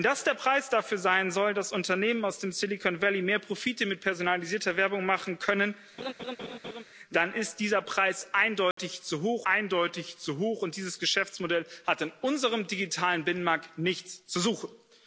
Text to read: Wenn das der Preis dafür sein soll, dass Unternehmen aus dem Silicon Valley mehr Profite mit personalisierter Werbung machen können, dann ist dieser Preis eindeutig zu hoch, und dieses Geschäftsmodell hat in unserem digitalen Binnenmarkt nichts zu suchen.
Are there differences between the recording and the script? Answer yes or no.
yes